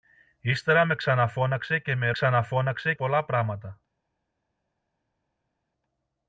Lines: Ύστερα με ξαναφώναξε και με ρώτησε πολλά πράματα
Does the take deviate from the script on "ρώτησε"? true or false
true